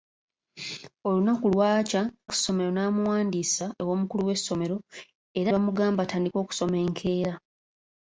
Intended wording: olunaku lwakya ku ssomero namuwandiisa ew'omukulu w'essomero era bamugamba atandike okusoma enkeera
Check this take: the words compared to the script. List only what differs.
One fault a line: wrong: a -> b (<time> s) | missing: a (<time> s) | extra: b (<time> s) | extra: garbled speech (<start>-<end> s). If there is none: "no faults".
no faults